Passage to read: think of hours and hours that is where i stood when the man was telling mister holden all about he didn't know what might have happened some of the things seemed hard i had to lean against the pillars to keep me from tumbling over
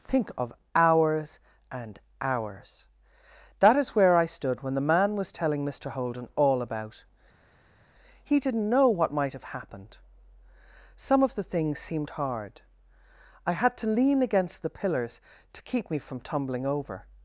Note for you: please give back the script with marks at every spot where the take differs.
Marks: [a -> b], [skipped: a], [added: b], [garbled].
think of hours and hours that is where i stood when the man was telling mister holden all about he didn't know what might have happened some of the things seemed hard i had to lean against the pillars to keep me from tumbling over